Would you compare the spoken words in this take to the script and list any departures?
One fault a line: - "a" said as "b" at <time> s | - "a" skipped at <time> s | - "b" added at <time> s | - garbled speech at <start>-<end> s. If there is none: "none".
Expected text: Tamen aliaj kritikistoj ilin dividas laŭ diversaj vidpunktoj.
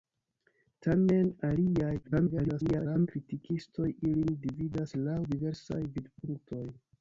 - garbled speech at 2.0-3.1 s